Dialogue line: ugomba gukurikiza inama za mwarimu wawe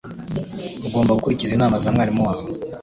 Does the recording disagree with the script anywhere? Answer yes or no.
no